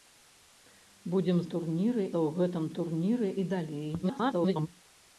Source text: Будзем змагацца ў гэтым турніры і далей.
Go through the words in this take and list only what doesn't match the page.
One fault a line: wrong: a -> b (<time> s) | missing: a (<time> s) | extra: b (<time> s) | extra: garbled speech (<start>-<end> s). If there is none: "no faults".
wrong: змагацца -> турніры (1.5 s)
extra: garbled speech (4.0-4.7 s)